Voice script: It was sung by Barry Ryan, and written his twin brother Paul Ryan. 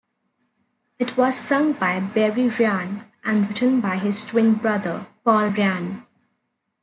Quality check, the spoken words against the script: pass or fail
fail